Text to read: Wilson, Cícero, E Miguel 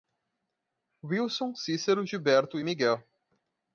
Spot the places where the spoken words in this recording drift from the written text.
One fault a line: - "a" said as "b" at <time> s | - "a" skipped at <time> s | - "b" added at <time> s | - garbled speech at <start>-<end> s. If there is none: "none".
- "Gilberto" added at 2.0 s